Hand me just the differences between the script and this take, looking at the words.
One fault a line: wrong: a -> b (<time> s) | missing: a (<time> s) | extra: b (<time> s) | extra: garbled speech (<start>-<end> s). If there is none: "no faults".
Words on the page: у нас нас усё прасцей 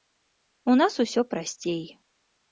missing: нас (0.9 s)